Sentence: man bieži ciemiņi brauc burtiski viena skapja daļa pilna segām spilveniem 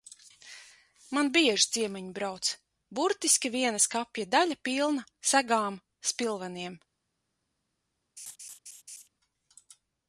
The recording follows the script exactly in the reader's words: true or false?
true